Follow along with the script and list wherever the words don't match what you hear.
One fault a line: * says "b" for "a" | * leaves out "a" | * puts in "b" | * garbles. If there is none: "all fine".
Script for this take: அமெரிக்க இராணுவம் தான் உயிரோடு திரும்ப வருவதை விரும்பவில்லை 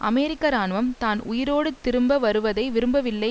all fine